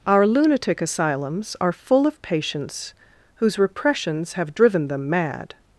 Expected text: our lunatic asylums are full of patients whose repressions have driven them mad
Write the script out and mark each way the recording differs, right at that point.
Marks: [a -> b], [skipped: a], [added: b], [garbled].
our lunatic asylums are full of patients whose repressions have driven them mad